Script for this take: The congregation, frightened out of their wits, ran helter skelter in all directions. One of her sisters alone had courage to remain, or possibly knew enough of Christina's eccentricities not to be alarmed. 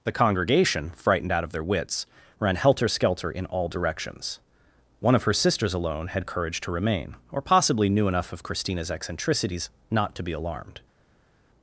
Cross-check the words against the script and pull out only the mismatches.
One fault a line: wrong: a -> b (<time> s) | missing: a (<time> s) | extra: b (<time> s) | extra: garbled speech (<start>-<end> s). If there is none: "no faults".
no faults